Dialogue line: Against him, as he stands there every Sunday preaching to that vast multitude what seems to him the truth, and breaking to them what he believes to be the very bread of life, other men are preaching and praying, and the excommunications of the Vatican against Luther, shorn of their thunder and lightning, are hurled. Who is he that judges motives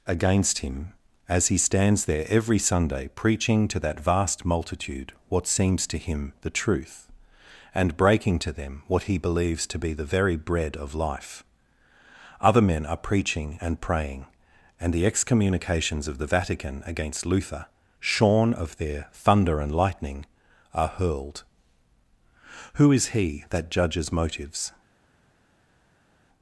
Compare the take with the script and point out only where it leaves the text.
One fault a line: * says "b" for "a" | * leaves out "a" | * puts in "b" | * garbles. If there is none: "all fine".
all fine